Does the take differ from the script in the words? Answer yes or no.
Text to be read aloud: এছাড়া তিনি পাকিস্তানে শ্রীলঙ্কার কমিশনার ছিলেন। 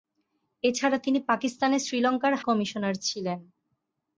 no